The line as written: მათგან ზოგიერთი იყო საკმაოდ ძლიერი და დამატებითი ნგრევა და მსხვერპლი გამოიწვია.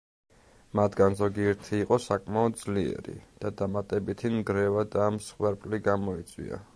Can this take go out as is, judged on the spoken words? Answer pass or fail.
pass